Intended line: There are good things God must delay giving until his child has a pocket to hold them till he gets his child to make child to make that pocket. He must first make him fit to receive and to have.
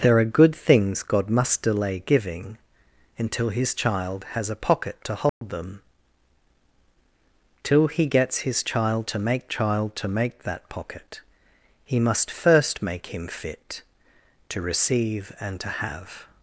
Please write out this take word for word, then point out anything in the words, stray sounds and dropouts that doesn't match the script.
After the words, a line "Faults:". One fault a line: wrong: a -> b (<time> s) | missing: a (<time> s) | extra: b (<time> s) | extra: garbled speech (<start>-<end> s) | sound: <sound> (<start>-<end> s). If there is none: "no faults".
There are good things God must delay giving until his child has a pocket to hold them till he gets his child to make child to make that pocket. He must first make him fit to receive and to have.
Faults:
sound: dropout (5.3-5.4 s)